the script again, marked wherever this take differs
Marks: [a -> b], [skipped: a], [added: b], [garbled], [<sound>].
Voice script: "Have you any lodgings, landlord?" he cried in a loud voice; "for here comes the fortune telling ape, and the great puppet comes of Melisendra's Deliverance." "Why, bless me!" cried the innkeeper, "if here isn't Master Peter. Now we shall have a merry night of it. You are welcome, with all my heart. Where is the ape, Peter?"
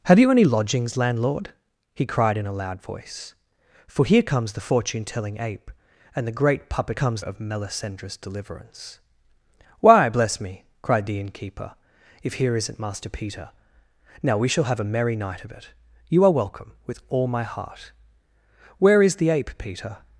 "Have you any lodgings, landlord?" he cried in a loud voice; "for here comes the fortune telling ape, and the great puppet comes of Melisendra's Deliverance." "Why, bless me!" cried the innkeeper, "if here isn't Master Peter. Now we shall have a merry night of it. You are welcome, with all my heart. Where is the ape, Peter?"